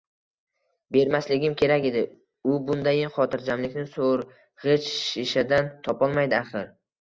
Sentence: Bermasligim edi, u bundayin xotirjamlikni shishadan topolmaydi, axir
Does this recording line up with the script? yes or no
no